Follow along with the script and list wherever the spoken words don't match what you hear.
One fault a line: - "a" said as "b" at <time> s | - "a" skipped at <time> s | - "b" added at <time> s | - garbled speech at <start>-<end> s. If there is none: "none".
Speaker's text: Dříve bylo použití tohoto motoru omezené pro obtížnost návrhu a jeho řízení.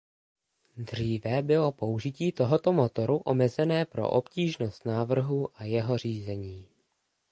none